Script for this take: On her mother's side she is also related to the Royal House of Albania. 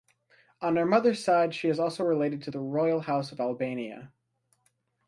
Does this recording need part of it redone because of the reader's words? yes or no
no